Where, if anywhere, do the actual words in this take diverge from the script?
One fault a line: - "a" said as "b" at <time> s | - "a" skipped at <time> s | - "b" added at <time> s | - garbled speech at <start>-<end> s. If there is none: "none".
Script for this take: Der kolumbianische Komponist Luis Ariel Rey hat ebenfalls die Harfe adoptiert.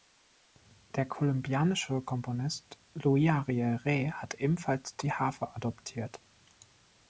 none